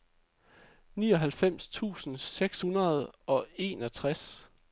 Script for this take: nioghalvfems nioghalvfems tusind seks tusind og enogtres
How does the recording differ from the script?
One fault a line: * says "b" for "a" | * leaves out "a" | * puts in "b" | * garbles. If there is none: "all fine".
* leaves out "nioghalvfems"
* says "hundrede" for "tusind"